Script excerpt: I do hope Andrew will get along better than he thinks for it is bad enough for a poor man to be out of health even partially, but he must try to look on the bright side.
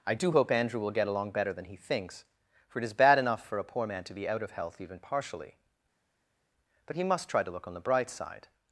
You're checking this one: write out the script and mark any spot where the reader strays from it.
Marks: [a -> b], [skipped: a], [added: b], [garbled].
I do hope Andrew will get along better than he thinks for it is bad enough for a poor man to be out of health even partially, but he must try to look on the bright side.